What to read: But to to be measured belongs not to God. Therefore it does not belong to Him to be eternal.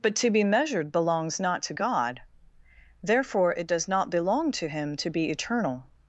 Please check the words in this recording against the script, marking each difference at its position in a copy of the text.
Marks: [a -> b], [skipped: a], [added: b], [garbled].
But to [skipped: to] be measured belongs not to God. Therefore it does not belong to Him to be eternal.